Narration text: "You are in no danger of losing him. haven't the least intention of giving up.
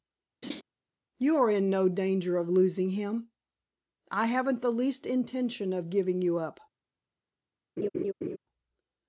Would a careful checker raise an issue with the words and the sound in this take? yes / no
yes